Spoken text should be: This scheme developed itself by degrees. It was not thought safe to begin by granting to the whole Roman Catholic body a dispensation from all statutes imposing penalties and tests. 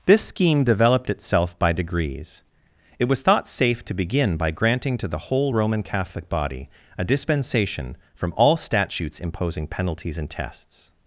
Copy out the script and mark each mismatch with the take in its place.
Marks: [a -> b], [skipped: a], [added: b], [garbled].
This scheme developed itself by degrees. It was [skipped: not] thought safe to begin by granting to the whole Roman Catholic body a dispensation from all statutes imposing penalties and tests.